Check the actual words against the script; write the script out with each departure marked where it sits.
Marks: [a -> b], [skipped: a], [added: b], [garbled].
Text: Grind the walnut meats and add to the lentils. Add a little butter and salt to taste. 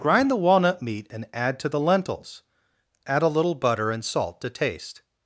Grind the walnut [meats -> meat] and add to the lentils. Add a little butter and salt to taste.